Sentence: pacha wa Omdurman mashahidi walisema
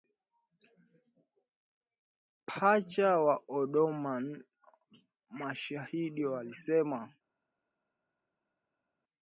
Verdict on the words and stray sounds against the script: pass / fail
pass